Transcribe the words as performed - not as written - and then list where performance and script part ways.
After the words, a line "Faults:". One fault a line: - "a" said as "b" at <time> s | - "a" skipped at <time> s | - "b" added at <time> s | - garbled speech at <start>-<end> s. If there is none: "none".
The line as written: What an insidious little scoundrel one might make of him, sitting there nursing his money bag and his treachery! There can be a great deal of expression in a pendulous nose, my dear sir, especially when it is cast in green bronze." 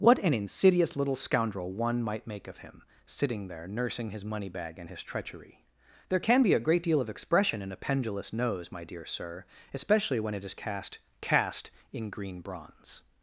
What an insidious little scoundrel one might make of him, sitting there nursing his money bag and his treachery! There can be a great deal of expression in a pendulous nose, my dear sir, especially when it is cast cast in green bronze."
Faults:
- "cast" added at 11.2 s